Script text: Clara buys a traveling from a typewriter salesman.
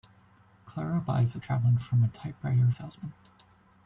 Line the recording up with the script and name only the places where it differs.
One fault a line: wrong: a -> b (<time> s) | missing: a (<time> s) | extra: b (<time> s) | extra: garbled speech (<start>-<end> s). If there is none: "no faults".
no faults